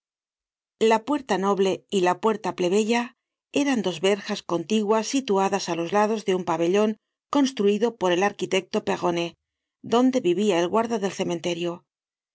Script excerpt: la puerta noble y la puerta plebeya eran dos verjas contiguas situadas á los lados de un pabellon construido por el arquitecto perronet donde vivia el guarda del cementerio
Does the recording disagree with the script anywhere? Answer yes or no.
no